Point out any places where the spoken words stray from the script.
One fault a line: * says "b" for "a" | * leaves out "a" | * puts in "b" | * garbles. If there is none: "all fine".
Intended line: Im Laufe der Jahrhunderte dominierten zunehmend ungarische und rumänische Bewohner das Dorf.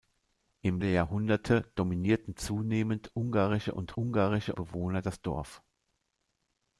* leaves out "Laufe"
* says "ungarische" for "rumänische"